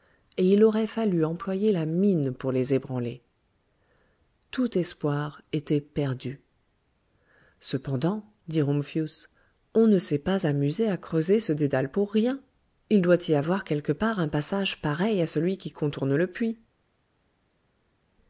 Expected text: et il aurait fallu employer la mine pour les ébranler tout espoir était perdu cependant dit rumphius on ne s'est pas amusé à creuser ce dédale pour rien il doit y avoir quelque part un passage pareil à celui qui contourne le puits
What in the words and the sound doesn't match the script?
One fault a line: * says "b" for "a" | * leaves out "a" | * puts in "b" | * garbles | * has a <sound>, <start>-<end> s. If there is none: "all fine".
all fine